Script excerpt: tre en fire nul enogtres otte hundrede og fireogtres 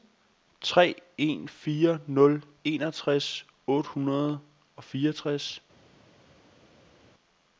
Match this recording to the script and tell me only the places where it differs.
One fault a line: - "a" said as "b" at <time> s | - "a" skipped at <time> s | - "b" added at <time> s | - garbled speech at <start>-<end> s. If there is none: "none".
none